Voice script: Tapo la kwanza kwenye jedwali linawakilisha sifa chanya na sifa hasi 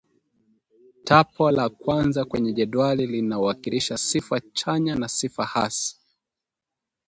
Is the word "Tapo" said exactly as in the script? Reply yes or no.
yes